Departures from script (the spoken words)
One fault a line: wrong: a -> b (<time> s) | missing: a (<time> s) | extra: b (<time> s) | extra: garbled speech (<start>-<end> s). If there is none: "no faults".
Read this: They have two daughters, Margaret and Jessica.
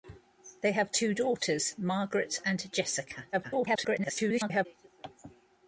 extra: garbled speech (3.3-4.7 s)